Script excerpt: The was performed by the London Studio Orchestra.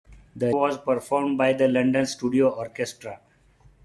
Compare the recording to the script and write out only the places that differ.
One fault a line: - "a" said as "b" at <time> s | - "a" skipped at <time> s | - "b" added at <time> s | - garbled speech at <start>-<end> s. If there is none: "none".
none